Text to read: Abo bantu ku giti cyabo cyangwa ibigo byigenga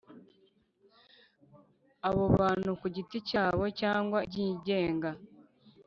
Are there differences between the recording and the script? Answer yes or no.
yes